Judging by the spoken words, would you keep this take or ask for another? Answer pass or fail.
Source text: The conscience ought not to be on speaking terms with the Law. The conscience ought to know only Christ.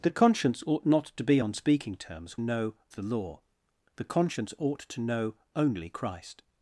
fail